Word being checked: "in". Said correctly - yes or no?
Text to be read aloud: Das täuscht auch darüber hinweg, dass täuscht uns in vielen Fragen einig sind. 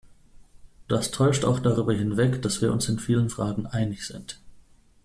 yes